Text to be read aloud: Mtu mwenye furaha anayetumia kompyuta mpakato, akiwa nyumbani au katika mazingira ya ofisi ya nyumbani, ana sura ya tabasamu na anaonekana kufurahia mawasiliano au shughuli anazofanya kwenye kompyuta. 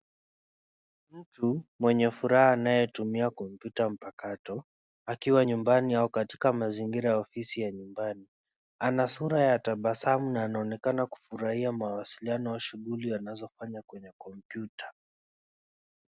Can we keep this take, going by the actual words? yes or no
yes